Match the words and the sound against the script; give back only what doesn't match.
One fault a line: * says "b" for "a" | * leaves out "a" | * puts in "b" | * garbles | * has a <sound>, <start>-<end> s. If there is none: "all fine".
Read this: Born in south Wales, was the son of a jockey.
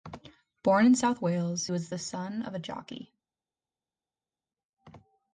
all fine